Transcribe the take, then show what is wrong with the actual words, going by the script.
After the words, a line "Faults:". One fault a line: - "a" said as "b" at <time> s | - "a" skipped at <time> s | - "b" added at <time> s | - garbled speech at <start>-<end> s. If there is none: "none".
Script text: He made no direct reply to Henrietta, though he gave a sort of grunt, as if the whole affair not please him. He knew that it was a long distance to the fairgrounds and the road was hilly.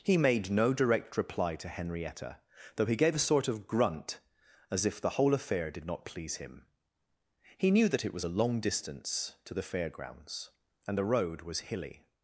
He made no direct reply to Henrietta, though he gave a sort of grunt, as if the whole affair did not please him. He knew that it was a long distance to the fairgrounds and the road was hilly.
Faults:
- "did" added at 5.7 s